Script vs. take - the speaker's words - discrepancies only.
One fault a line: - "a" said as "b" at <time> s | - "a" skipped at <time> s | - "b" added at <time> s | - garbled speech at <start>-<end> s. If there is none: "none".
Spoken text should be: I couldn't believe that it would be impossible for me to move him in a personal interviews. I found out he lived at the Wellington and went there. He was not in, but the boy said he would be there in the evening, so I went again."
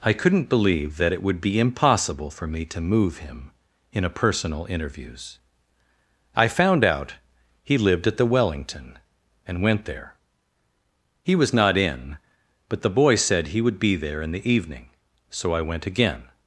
none